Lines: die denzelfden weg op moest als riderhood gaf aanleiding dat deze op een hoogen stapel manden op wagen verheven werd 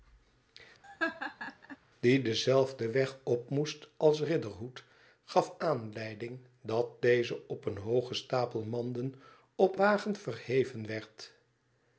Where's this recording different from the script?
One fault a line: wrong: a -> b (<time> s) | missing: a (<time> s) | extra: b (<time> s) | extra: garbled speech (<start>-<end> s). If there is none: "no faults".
no faults